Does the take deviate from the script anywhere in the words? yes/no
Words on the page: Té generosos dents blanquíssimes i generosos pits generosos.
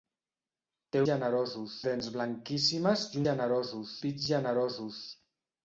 no